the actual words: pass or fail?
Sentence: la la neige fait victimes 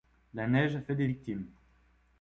fail